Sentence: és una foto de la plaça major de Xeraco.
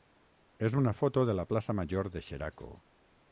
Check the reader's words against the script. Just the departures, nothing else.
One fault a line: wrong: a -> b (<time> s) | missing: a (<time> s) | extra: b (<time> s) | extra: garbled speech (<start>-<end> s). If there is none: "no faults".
no faults